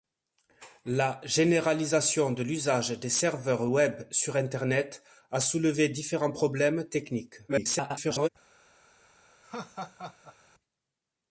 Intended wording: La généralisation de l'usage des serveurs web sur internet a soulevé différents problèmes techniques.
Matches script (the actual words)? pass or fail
fail